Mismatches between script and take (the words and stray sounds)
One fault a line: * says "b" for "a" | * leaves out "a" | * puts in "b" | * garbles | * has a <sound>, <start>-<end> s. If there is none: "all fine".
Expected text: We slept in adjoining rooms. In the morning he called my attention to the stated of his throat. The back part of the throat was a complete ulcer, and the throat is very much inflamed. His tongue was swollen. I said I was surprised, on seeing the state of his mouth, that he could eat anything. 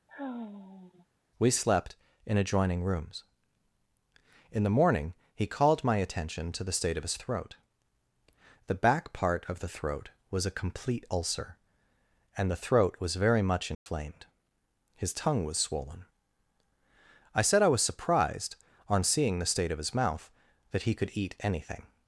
* has a sigh, 0.1-1.1 s
* says "state" for "stated"
* says "was" for "is"
* has a dropout, 13.7-13.9 s